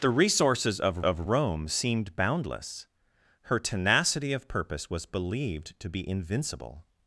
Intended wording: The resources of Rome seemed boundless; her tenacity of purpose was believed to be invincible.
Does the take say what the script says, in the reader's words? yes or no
no